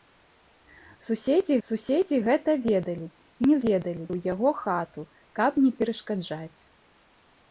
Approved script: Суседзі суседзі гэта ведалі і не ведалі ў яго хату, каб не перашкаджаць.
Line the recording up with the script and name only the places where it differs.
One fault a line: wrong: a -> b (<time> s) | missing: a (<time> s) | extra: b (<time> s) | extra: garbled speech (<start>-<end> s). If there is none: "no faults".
no faults